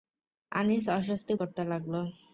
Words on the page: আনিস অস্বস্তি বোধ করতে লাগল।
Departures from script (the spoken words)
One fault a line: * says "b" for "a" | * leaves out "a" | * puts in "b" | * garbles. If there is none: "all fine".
* leaves out "বোধ"